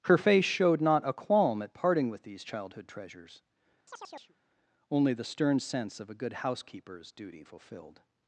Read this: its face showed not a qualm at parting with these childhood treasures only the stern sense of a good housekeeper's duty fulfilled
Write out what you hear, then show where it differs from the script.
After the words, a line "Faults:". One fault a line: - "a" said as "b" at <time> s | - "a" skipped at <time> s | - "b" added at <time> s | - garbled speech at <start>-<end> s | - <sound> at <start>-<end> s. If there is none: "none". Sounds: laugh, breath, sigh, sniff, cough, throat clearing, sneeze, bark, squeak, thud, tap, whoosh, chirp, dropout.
her face showed not a qualm at parting with these childhood treasures only the stern sense of a good housekeeper's duty fulfilled
Faults:
- "its" said as "her" at 0.0 s
- chirp at 3.9-4.4 s